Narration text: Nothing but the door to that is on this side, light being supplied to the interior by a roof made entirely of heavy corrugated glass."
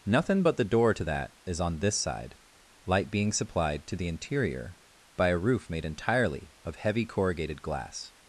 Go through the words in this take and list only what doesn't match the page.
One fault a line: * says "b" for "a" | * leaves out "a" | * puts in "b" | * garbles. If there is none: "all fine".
all fine